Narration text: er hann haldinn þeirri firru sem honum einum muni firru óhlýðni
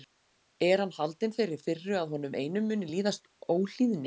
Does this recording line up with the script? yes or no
no